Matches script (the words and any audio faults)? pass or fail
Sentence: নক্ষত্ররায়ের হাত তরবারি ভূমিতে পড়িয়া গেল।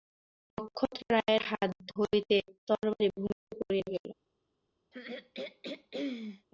fail